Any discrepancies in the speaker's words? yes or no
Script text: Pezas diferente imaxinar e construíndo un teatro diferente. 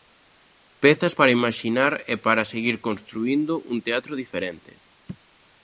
yes